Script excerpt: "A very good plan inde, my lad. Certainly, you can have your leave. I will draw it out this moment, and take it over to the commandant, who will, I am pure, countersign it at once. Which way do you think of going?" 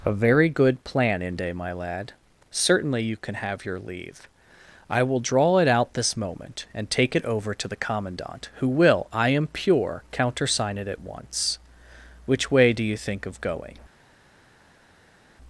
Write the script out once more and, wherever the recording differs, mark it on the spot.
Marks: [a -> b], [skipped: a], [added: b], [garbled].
"A very good plan inde, my lad. Certainly, you can have your leave. I will draw it out this moment, and take it over to the commandant, who will, I am pure, countersign it at once. Which way do you think of going?"